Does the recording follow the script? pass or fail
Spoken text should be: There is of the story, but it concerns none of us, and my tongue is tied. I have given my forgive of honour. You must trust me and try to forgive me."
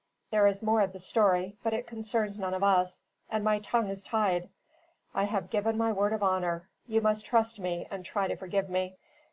fail